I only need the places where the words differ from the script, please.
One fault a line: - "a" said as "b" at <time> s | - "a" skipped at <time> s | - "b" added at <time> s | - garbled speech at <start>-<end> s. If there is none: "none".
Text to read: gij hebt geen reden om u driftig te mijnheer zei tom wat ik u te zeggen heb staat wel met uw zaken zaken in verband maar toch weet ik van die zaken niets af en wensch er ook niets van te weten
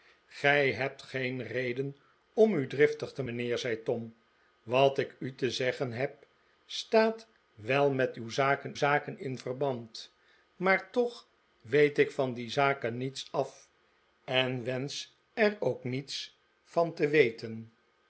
none